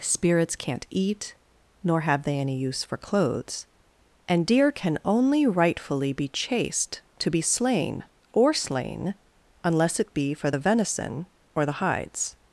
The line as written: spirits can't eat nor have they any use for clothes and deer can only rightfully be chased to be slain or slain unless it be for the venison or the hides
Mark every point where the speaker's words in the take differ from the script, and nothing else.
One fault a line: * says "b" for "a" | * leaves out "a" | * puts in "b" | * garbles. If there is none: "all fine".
all fine